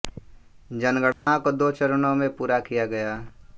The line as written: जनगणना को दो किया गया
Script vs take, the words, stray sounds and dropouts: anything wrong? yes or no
yes